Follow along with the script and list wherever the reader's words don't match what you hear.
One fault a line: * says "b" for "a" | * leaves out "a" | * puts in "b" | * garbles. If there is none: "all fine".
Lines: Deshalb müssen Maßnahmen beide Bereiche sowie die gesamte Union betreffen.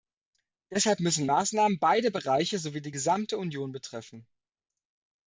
all fine